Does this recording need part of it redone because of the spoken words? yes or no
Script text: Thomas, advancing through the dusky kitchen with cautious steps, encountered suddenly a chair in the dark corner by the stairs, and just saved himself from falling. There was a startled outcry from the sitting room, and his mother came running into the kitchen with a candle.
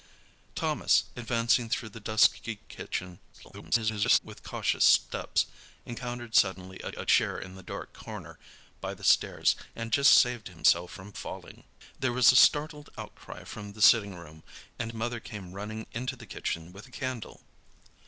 yes